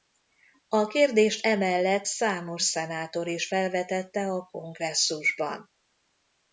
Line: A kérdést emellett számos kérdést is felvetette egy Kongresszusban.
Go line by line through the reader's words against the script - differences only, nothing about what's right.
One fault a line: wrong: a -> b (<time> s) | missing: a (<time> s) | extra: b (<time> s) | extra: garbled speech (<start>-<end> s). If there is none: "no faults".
wrong: kérdést -> szenátor (2.6 s)
wrong: egy -> a (4.3 s)